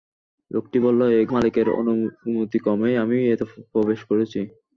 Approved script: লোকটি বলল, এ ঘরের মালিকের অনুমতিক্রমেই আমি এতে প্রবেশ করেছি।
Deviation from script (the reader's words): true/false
true